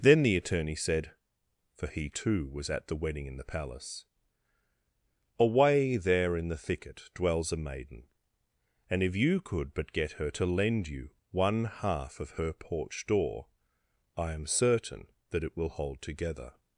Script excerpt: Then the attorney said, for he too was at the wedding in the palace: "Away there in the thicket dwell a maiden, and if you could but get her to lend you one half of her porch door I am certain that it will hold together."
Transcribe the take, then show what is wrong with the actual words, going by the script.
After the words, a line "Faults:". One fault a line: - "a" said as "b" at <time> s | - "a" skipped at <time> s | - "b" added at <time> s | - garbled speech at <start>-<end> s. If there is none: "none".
Then the attorney said, for he too was at the wedding in the palace: "Away there in the thicket dwells a maiden, and if you could but get her to lend you one half of her porch door I am certain that it will hold together."
Faults:
- "dwell" said as "dwells" at 7.1 s